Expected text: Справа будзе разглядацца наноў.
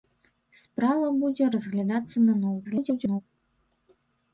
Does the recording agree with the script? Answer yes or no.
no